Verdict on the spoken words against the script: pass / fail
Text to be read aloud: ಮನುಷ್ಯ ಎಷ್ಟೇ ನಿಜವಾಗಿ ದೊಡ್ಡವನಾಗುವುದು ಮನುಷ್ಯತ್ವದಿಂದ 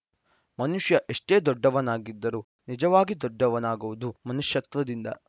fail